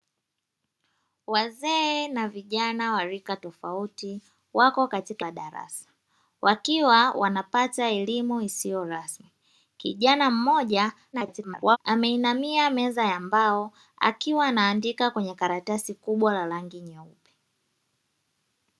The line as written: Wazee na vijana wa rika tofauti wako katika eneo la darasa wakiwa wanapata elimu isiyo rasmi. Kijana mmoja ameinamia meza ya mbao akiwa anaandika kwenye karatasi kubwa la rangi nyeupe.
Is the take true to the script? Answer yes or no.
no